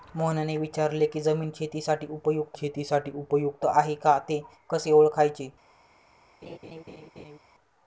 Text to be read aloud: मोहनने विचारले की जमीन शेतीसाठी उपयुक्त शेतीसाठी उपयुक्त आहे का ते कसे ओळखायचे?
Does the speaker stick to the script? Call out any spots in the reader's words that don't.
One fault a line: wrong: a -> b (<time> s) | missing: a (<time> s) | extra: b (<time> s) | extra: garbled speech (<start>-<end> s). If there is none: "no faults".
no faults